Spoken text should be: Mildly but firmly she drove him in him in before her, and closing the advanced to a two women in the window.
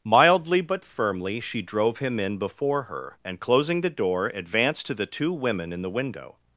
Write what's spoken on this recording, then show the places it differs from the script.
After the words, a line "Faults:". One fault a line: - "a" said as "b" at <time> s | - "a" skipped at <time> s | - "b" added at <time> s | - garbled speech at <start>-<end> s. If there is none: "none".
Mildly but firmly she drove him in before her, and closing the door, advanced to the two women in the window.
Faults:
- "him in" skipped at 2.4 s
- "door" added at 3.9 s
- "a" said as "the" at 4.9 s